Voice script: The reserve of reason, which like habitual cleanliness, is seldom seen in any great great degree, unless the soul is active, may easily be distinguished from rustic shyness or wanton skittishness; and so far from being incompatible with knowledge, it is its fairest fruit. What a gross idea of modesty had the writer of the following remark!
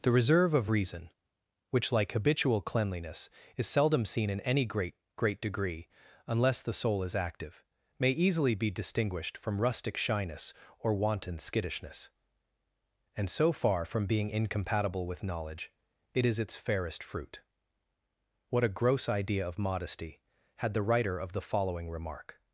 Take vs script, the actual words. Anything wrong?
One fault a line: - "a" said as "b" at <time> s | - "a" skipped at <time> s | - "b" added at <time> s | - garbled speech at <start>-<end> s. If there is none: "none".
none